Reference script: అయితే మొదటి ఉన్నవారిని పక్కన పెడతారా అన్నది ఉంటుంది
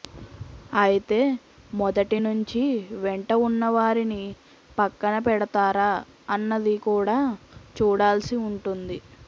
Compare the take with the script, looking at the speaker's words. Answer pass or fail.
fail